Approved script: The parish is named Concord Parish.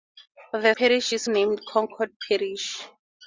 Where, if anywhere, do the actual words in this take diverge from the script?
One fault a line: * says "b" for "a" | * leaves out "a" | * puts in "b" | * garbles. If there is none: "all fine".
all fine